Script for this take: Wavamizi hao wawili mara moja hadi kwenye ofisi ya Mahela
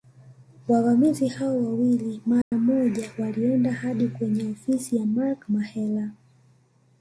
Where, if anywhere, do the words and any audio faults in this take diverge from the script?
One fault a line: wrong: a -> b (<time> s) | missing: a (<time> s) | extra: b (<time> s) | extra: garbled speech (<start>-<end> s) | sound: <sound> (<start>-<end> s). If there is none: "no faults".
sound: dropout (2.4-2.5 s)
extra: walienda (3.2 s)
extra: Mark (5.0 s)